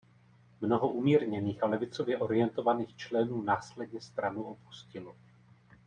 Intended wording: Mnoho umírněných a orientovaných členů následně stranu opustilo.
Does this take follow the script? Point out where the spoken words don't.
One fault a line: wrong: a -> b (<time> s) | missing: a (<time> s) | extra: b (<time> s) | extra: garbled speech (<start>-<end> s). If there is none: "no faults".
extra: levicově (1.7 s)